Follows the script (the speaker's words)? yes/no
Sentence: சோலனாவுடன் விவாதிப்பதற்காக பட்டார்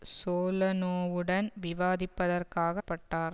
yes